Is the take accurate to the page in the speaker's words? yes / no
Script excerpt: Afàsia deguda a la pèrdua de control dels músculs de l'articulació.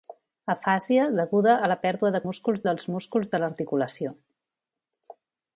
no